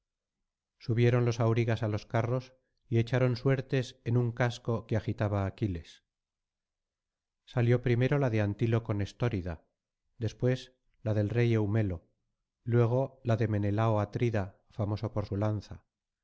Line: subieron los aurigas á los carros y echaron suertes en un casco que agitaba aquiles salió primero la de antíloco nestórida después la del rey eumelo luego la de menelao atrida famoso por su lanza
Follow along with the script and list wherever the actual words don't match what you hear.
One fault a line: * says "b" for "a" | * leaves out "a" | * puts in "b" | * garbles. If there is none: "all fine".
all fine